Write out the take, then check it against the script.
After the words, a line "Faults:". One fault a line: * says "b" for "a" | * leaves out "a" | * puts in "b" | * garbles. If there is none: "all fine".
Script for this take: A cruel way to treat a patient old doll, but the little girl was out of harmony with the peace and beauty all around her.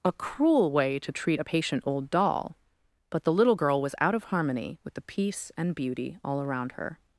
A cruel way to treat a patient old doll, but the little girl was out of harmony with the peace and beauty all around her.
Faults:
all fine